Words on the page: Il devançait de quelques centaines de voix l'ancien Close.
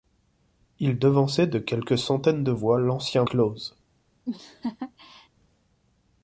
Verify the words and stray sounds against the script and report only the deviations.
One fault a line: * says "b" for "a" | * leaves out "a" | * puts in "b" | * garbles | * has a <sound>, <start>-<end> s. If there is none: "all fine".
* has a laugh, 4.2-5.3 s